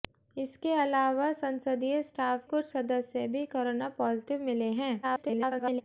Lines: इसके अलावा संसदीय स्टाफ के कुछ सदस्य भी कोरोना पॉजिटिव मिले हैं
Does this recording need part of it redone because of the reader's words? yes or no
yes